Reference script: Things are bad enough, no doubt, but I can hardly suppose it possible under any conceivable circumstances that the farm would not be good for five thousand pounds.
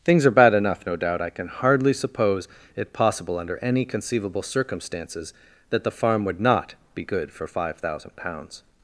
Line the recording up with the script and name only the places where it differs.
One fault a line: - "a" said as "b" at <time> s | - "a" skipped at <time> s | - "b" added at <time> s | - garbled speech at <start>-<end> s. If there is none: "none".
- "but" skipped at 1.2 s